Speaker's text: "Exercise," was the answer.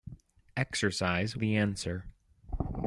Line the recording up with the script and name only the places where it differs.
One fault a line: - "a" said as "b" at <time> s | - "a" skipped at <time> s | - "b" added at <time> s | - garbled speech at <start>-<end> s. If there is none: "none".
- "was" skipped at 1.4 s